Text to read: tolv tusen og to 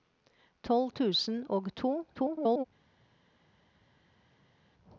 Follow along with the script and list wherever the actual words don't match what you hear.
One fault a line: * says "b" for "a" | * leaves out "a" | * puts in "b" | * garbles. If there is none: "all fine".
* garbles